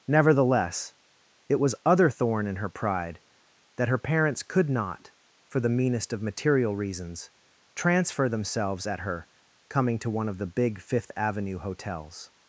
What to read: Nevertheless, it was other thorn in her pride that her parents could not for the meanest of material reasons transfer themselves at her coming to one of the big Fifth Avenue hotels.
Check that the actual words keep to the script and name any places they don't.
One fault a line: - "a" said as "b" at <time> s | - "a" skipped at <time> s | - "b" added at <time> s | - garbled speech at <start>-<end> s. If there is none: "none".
none